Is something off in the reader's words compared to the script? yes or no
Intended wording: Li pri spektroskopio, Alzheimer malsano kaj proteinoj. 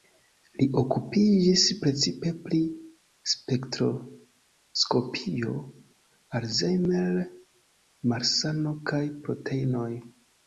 yes